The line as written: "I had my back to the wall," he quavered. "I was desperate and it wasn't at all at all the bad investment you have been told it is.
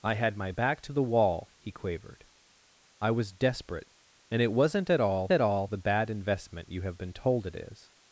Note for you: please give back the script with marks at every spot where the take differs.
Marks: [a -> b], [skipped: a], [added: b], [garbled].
"I had my back to the wall," he quavered. "I was desperate and it wasn't at all at all the bad investment you have been told it is.